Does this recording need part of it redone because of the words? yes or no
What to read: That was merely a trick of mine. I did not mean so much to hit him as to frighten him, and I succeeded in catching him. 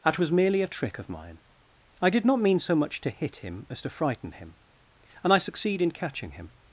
yes